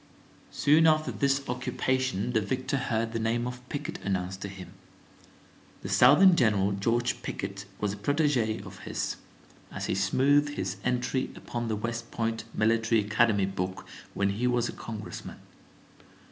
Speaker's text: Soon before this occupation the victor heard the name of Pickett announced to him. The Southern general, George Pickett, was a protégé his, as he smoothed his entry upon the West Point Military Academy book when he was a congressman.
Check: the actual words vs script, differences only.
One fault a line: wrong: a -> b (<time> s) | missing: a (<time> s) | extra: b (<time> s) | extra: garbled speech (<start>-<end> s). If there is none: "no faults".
wrong: before -> after (0.9 s)
extra: of (8.6 s)